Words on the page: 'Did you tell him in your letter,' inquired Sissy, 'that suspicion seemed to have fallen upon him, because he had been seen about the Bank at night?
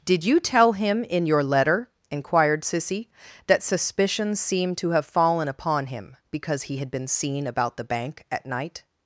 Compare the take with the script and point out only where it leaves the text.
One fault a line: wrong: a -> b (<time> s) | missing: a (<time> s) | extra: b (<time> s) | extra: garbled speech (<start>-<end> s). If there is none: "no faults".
no faults